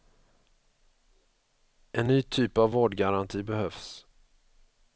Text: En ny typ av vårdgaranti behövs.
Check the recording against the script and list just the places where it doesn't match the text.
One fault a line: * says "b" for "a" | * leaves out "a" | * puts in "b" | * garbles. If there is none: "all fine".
all fine